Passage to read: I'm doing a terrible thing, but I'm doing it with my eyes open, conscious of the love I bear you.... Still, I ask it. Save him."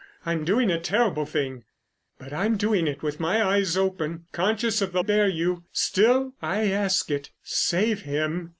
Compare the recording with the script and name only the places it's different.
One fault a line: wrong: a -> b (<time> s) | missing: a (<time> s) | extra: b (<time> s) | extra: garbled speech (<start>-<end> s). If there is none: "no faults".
missing: love I (5.0 s)